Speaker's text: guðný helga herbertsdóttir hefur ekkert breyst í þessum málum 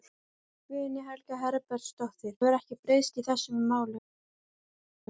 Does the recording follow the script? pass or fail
pass